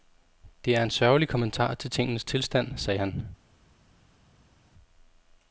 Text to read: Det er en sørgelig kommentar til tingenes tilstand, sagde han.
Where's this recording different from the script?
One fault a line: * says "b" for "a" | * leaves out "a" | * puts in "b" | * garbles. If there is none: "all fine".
all fine